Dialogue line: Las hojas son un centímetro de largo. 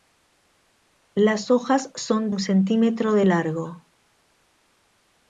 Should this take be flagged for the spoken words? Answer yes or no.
no